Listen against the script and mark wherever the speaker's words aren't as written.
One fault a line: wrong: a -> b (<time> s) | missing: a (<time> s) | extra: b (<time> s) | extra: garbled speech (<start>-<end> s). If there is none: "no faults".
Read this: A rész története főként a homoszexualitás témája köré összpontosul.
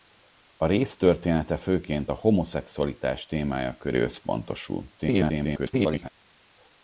extra: garbled speech (5.0-6.1 s)